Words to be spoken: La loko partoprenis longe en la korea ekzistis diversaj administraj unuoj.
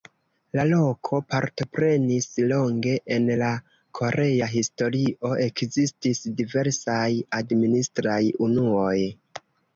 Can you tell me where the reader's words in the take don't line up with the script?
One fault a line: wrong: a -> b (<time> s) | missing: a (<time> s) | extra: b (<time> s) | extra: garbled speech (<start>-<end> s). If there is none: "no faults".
extra: historio (4.6 s)